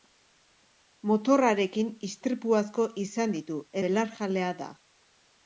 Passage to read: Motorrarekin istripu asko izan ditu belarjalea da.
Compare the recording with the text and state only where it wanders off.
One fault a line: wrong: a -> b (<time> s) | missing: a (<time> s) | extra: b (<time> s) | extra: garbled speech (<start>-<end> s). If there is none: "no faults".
no faults